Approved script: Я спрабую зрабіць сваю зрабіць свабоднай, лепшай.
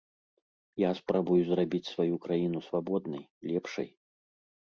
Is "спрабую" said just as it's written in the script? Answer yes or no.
yes